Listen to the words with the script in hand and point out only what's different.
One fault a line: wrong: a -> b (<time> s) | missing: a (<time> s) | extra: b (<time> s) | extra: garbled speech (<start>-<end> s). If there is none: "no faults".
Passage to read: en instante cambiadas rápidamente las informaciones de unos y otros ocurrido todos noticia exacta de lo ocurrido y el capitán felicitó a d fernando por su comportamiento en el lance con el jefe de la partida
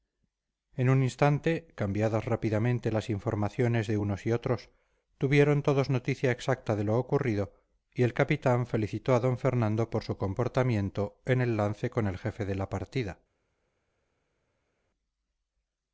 extra: un (0.9 s)
wrong: ocurrido -> tuvieron (5.2 s)